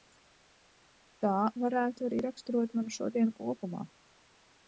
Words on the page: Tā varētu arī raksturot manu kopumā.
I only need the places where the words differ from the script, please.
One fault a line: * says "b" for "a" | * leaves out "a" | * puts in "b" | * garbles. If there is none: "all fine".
* puts in "šodienu"